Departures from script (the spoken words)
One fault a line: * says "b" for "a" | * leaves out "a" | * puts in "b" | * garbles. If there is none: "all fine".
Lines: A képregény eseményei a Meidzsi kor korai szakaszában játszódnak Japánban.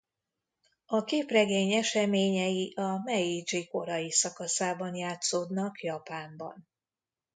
* leaves out "kor"